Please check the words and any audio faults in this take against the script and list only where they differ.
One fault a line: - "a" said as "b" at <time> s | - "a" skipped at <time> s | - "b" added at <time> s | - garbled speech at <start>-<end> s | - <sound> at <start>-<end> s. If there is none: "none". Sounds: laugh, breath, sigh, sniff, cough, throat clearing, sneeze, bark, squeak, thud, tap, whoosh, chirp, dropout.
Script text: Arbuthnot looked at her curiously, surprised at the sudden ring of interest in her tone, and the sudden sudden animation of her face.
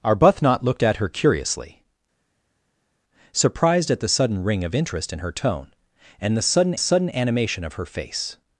none